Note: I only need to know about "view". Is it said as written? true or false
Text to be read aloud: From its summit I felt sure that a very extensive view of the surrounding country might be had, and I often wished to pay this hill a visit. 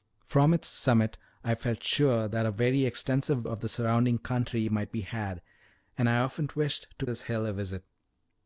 false